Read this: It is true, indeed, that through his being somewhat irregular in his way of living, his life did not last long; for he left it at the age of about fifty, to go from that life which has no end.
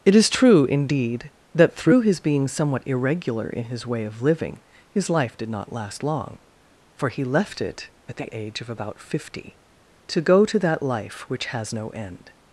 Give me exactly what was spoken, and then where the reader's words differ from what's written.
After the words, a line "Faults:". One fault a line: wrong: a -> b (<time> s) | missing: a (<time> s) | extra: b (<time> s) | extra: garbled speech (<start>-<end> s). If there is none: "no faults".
It is true, indeed, that through his being somewhat irregular in his way of living, his life did not last long; for he left it at the age of about fifty, to go to that life which has no end.
Faults:
wrong: from -> to (10.5 s)